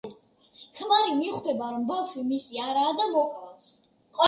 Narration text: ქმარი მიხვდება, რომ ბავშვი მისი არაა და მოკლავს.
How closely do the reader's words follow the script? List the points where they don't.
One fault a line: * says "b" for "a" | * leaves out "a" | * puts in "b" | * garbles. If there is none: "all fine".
all fine